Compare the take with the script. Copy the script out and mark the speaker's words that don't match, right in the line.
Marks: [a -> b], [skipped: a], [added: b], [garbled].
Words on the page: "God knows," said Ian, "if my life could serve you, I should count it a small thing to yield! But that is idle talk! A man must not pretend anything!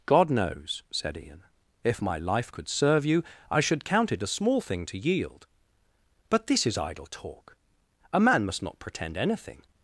"God knows," said Ian, "if my life could serve you, I should count it a small thing to yield! But [that -> this] is idle talk! A man must not pretend anything!